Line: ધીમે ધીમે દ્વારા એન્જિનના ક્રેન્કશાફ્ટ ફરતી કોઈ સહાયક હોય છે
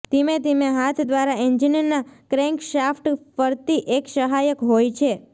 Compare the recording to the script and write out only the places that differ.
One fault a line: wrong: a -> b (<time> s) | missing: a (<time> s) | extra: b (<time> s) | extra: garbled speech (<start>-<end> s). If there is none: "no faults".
extra: હાથ (0.7 s)
wrong: કોઈ -> એક (4.0 s)